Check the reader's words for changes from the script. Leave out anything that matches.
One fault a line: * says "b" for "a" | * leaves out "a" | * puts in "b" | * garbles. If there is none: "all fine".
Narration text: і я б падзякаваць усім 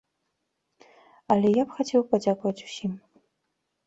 * says "але" for "і"
* puts in "хацеў"